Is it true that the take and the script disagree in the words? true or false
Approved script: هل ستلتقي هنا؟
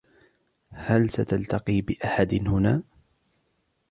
true